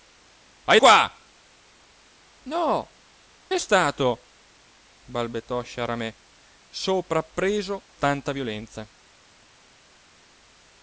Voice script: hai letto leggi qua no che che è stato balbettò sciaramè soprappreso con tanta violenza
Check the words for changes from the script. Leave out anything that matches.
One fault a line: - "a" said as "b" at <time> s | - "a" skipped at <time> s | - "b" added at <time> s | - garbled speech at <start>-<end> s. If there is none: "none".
- "letto leggi" skipped at 0.8 s
- "che che" skipped at 3.0 s
- "con" skipped at 7.9 s